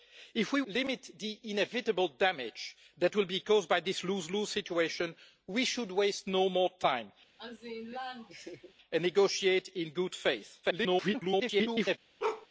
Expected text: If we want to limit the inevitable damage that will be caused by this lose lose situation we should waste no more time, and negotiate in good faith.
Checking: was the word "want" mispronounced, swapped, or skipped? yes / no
yes